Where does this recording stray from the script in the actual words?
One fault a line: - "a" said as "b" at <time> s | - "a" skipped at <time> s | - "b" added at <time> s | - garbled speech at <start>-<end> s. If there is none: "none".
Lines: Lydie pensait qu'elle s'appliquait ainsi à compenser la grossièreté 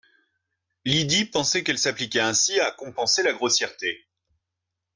none